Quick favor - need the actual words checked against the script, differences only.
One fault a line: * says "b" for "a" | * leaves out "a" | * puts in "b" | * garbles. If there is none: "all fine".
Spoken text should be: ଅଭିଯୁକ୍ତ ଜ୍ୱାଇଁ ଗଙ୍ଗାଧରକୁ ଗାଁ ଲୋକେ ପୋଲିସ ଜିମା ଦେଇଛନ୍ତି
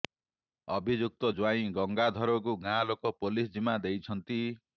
all fine